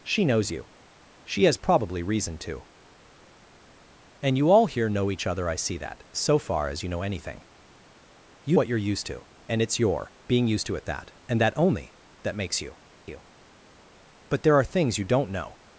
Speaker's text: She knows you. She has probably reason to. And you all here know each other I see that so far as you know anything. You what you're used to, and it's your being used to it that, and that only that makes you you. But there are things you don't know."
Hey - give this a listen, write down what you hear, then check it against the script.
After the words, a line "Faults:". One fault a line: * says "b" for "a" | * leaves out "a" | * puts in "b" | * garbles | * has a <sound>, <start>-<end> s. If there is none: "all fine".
She knows you. She has probably reason to. And you all here know each other I see that so far as you know anything. You what you're used to, and it's your being used to it that, and that only that makes you you. But there are things you don't know."
Faults:
all fine